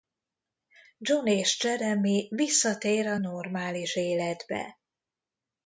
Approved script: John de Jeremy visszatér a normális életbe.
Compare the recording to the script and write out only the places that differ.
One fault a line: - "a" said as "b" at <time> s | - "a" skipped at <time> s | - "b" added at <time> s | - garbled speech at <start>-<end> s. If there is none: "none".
- "de" said as "és" at 1.3 s